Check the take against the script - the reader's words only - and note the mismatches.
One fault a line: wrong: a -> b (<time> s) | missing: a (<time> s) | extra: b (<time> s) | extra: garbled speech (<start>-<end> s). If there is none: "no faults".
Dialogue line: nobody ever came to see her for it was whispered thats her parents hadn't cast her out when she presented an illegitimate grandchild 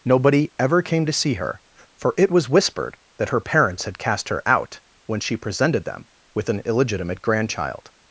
wrong: thats -> that (3.2 s)
wrong: hadn't -> had (3.8 s)
extra: them with (5.8 s)